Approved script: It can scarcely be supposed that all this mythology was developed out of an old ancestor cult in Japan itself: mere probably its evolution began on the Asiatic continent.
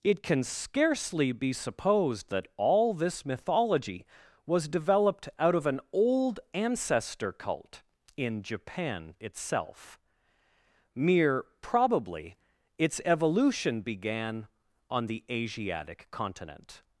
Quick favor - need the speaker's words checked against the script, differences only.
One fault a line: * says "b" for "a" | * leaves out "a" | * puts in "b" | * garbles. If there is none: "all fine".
all fine